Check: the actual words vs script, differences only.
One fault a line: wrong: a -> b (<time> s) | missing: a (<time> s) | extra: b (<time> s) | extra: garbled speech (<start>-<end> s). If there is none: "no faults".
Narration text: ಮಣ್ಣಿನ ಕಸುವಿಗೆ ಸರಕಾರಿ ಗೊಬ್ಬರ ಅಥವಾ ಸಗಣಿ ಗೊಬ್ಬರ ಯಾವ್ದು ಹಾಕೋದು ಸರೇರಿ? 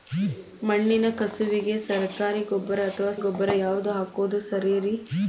missing: ಸಗಣಿ (3.1 s)